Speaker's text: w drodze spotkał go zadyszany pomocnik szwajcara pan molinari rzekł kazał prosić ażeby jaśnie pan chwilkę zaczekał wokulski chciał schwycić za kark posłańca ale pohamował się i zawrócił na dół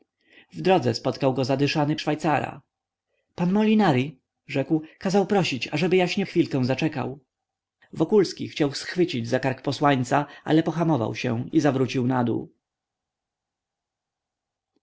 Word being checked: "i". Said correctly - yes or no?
yes